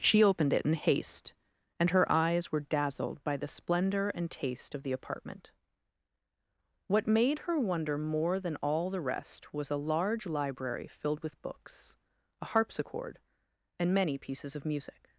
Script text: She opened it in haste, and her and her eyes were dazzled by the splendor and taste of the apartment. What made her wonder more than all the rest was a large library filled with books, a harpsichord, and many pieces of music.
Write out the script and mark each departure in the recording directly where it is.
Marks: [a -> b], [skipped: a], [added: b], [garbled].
She opened it in haste, and her [skipped: and her] eyes were dazzled by the splendor and taste of the apartment. What made her wonder more than all the rest was a large library filled with books, a harpsichord, and many pieces of music.